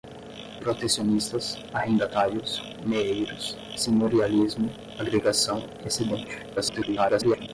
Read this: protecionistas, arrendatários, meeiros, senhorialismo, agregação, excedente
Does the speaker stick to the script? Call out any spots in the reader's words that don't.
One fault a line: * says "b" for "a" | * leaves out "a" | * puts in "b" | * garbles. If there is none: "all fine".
* garbles